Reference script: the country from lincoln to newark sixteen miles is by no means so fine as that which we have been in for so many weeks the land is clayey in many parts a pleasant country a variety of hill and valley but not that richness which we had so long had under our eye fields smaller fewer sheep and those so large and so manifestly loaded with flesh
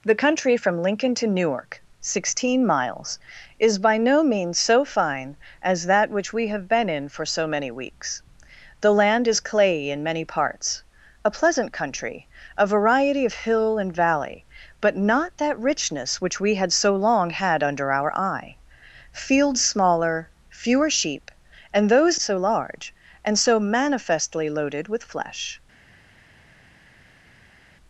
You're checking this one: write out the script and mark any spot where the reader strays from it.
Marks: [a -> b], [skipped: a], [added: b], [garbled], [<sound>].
the country from lincoln to newark sixteen miles is by no means so fine as that which we have been in for so many weeks the land is clayey in many parts a pleasant country a variety of hill and valley but not that richness which we had so long had under our eye fields smaller fewer sheep and those so large and so manifestly loaded with flesh